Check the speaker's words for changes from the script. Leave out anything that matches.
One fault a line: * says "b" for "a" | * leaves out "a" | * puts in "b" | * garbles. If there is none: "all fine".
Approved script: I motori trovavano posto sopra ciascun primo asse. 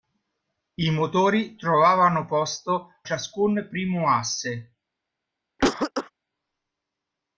* leaves out "sopra"